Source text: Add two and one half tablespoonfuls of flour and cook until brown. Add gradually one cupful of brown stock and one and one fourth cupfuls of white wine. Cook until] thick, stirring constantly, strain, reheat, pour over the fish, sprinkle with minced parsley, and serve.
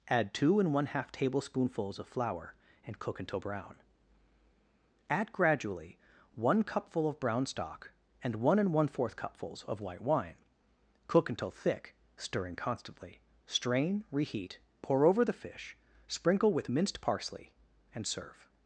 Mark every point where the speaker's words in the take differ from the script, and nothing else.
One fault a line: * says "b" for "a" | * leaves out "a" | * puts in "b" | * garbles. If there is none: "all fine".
all fine